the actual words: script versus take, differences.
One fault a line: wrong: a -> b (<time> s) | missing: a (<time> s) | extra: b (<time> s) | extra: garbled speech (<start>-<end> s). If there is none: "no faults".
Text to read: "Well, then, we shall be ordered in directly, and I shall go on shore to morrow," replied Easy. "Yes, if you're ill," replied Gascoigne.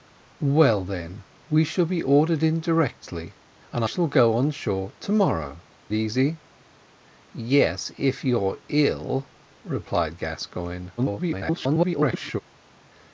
missing: I (3.9 s)
missing: replied (5.6 s)
extra: garbled speech (11.0-12.4 s)